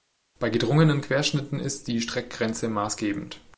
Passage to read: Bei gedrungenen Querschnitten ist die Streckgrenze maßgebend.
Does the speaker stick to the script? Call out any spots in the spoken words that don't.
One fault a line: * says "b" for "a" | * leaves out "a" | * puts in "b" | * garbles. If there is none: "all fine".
all fine